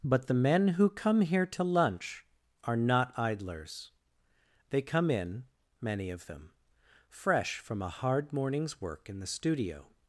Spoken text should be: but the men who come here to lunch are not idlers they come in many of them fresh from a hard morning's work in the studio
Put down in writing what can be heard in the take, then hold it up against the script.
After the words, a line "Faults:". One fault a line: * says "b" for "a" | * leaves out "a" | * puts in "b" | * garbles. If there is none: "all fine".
but the men who come here to lunch are not idlers they come in many of them fresh from a hard morning's work in the studio
Faults:
all fine